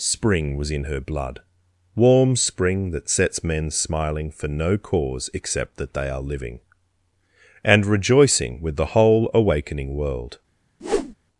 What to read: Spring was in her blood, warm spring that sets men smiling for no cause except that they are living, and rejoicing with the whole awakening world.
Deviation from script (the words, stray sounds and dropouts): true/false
true